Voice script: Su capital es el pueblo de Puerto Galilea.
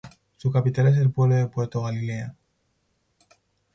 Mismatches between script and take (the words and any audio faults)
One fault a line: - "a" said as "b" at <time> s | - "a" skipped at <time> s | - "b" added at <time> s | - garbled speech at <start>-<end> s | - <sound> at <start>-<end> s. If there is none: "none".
none